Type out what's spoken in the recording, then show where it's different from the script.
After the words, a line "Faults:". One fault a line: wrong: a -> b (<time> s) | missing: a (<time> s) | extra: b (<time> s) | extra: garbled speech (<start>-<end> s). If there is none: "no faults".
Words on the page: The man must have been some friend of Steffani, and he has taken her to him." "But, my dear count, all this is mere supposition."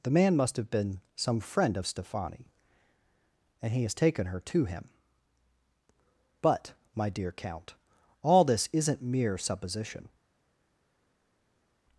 The man must have been some friend of Steffani, and he has taken her to him." "But, my dear count, all this isn't mere supposition."
Faults:
wrong: is -> isn't (8.7 s)